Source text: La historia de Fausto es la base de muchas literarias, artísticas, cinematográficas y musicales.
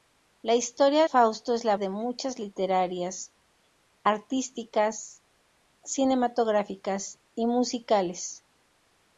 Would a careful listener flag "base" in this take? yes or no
yes